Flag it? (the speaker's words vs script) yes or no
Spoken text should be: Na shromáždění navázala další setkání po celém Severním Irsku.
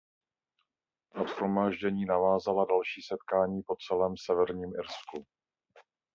no